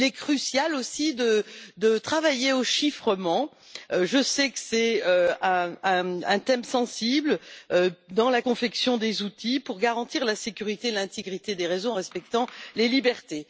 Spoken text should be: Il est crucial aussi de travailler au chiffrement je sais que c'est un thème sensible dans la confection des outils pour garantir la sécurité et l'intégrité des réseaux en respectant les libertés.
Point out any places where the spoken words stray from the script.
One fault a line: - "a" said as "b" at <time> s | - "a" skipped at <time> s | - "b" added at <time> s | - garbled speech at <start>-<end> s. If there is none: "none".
none